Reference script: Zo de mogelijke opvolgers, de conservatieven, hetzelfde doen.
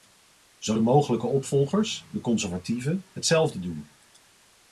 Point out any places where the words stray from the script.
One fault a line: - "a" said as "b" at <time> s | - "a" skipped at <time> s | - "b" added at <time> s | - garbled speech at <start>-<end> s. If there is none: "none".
none